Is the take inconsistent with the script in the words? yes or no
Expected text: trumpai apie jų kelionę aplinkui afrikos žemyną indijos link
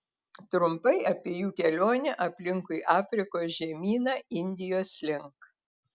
no